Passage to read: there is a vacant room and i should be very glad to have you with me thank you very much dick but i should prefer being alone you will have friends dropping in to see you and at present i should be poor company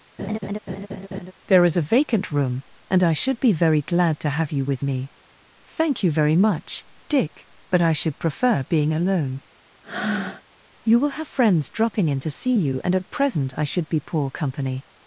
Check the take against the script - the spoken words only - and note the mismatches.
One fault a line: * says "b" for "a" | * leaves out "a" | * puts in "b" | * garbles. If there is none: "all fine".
all fine